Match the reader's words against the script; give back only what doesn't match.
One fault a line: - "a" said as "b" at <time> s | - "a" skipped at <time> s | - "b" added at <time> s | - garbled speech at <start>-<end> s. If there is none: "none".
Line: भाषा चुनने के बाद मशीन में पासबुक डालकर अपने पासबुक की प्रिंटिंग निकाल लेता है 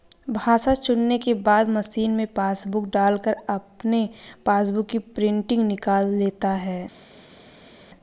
none